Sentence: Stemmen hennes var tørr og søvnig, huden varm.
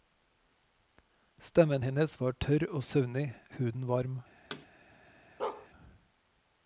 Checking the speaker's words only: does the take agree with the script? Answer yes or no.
yes